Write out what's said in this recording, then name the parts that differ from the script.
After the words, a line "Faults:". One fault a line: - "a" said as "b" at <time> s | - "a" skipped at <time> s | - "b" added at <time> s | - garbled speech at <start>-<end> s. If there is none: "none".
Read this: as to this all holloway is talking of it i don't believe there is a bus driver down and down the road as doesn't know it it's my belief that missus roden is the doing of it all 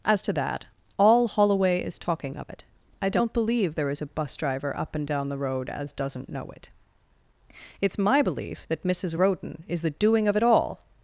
as to that all holloway is talking of it i don't believe there is a bus driver up and down the road as doesn't know it it's my belief that missus roden is the doing of it all
Faults:
- "this" said as "that" at 0.3 s
- "down" said as "up" at 4.8 s